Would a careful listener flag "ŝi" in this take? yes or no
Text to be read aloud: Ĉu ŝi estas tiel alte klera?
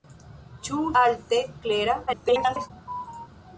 yes